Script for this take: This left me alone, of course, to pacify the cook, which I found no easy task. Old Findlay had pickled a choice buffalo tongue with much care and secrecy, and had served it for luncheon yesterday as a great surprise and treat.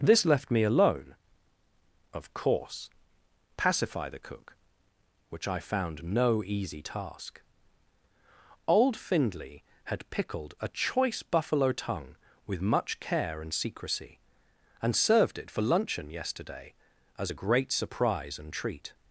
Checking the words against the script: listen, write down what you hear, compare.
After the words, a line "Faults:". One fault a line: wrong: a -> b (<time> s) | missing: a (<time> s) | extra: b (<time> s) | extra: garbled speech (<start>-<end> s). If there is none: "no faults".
This left me alone, of course, pacify the cook, which I found no easy task. Old Findlay had pickled a choice buffalo tongue with much care and secrecy, and served it for luncheon yesterday as a great surprise and treat.
Faults:
missing: to (2.9 s)
missing: had (14.9 s)